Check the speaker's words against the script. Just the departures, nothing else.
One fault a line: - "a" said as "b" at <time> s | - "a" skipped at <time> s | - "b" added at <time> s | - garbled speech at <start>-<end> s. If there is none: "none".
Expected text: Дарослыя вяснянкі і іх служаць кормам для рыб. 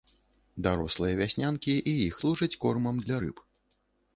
none